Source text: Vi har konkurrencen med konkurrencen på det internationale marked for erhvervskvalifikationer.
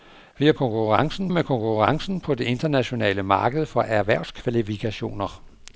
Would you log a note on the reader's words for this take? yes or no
no